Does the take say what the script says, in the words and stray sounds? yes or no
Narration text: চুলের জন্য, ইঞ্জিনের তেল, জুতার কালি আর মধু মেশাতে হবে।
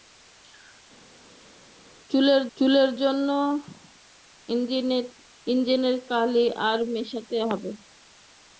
no